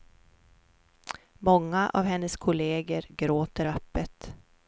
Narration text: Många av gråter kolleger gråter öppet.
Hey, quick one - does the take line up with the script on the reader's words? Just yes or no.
no